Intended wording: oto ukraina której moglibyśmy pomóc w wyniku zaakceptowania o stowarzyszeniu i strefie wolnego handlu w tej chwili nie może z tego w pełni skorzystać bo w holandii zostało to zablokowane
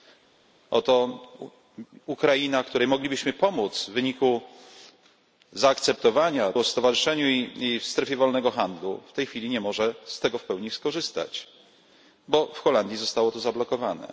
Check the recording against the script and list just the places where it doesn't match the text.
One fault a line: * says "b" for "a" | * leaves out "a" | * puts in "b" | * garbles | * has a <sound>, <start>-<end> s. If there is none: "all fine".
all fine